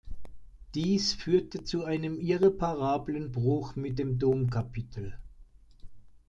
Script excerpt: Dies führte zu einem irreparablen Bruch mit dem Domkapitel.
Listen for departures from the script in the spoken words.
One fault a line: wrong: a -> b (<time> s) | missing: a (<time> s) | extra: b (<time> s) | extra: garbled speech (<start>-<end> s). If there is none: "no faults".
no faults